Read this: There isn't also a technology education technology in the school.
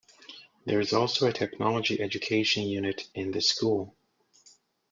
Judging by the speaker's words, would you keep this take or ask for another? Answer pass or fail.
fail